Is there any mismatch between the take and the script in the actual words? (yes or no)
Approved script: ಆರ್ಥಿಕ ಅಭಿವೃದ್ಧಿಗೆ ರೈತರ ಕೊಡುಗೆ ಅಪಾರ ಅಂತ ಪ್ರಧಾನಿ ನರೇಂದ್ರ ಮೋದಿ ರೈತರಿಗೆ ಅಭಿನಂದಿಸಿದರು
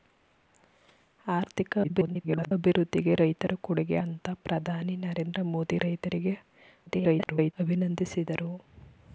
yes